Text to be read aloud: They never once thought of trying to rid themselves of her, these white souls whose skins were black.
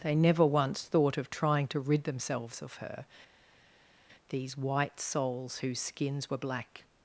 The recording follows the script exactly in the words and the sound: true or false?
true